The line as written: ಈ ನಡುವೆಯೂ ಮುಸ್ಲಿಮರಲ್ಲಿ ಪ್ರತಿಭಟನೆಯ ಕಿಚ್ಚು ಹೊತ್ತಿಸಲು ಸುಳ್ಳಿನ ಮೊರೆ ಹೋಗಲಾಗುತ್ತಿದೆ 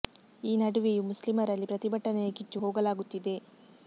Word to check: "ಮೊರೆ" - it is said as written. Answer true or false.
false